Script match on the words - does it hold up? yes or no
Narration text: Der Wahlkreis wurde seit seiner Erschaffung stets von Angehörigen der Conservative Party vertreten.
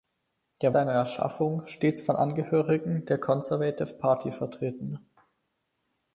no